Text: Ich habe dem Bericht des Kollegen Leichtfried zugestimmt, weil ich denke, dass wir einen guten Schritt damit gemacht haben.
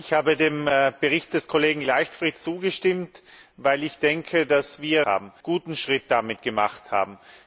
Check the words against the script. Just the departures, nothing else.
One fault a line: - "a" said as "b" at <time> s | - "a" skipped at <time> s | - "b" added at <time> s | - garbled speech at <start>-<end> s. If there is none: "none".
- "einen" said as "haben" at 5.1 s